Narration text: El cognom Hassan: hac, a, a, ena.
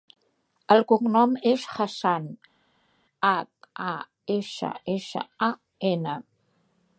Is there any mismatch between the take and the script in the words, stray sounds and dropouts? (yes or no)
yes